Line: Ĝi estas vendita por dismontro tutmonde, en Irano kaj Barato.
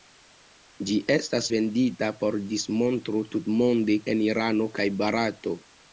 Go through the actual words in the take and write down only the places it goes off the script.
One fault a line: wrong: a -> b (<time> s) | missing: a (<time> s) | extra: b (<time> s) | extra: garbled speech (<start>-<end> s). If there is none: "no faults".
no faults